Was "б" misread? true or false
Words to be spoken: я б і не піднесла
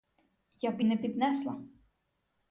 false